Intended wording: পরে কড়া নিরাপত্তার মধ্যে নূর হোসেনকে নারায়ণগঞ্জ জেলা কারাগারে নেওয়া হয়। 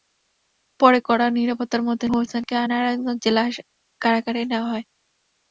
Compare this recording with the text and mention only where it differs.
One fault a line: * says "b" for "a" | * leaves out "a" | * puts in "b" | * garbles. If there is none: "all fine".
* leaves out "নূর"